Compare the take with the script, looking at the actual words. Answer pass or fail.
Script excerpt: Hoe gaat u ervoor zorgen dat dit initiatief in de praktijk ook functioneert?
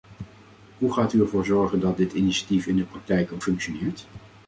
pass